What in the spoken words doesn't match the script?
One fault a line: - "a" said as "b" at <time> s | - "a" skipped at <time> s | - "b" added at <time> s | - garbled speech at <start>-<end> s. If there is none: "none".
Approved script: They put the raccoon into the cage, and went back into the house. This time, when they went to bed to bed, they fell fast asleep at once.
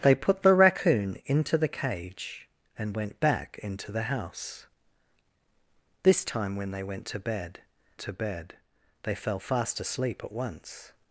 none